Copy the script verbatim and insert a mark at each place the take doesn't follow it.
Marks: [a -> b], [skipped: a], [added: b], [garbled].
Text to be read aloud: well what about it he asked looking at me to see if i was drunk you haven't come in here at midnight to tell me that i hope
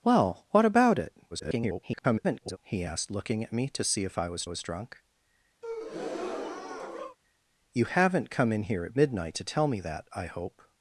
well what about it [garbled] he asked looking at me to see if i was [added: was] drunk you haven't come in here at midnight to tell me that i hope